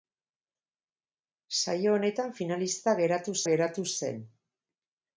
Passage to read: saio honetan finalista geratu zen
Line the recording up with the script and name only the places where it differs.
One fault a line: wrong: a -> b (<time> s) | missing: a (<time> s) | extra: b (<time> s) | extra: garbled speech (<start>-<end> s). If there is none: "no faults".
extra: geratu (3.5 s)